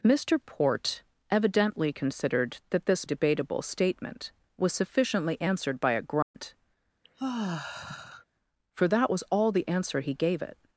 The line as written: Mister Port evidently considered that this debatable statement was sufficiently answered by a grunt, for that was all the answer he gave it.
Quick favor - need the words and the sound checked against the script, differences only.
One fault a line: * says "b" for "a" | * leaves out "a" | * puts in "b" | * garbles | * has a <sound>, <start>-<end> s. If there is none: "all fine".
* has a dropout, 6.2-6.3 s
* has a sigh, 7.0-8.3 s